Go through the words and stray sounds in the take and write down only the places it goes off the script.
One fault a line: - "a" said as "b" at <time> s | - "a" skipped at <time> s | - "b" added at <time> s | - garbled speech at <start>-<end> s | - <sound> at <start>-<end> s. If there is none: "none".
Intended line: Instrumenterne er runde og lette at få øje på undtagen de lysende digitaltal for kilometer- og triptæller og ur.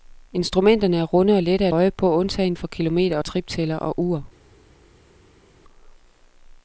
- "få" skipped at 1.8 s
- "de lysende digitaltal" skipped at 2.5 s